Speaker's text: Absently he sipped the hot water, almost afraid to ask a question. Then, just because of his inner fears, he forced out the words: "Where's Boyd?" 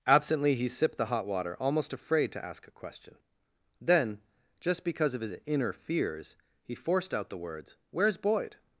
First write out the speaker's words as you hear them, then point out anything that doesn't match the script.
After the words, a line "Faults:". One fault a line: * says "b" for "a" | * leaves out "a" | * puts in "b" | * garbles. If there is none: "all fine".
Absently he sipped the hot water, almost afraid to ask a question. Then, just because of his inner fears, he forced out the words: "Where's Boyd?"
Faults:
all fine